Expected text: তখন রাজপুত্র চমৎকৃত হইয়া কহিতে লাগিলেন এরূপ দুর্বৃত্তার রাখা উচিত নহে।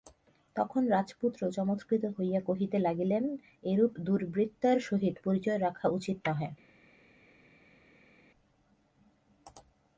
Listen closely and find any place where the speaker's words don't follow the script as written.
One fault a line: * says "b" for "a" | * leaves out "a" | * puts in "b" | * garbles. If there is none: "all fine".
* puts in "সহিত পরিচয়"